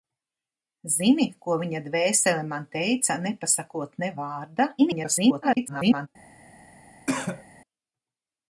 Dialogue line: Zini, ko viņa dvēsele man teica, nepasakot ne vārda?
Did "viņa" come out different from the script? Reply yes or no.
no